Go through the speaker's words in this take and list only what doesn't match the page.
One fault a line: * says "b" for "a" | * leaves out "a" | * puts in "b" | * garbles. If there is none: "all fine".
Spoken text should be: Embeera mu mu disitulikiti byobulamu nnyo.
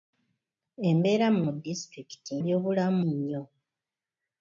all fine